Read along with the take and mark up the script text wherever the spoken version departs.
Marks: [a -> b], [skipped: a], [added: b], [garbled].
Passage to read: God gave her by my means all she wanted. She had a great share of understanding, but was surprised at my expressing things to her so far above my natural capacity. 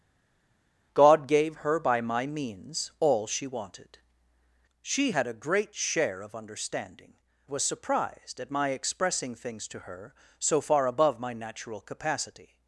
God gave her by my means all she wanted. She had a great share of understanding, [skipped: but] was surprised at my expressing things to her so far above my natural capacity.